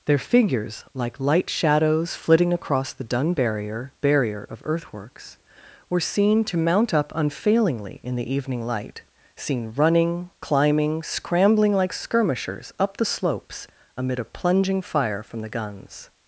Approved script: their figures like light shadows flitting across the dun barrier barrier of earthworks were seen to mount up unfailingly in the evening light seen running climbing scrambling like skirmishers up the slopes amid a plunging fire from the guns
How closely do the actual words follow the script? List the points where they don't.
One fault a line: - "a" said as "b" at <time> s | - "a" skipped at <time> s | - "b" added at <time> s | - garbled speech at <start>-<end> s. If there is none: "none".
none